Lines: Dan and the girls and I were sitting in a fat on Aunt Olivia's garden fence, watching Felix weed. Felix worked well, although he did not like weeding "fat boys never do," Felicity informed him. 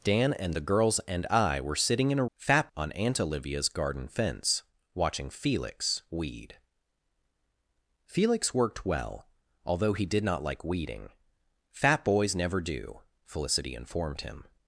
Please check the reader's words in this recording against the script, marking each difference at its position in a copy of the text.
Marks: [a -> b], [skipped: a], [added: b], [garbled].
Dan and the girls and I were sitting in a fat on Aunt Olivia's garden fence, watching Felix weed. Felix worked well, although he did not like weeding "fat boys never do," Felicity informed him.